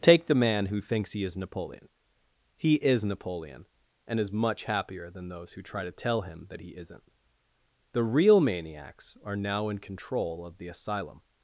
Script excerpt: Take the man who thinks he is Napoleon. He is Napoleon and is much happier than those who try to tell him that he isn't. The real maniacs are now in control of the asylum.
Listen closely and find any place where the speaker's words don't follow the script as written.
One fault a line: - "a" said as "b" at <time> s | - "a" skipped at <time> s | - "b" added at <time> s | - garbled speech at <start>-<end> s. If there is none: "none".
none